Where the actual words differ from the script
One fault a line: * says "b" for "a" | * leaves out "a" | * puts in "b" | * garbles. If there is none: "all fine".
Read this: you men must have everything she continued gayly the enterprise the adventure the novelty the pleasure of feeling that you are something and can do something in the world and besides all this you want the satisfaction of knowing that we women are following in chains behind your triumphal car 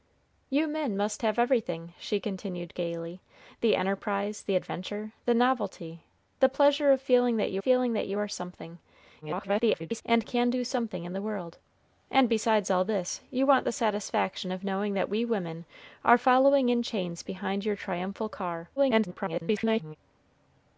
* puts in "feeling that you"
* garbles
* garbles